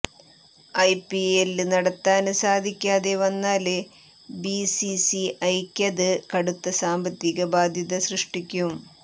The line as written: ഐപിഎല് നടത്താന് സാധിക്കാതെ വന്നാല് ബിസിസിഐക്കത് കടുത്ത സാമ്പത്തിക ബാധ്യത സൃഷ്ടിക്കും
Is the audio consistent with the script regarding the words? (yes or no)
yes